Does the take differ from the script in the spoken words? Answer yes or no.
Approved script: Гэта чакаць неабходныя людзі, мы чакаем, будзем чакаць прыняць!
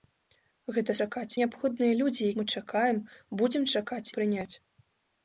no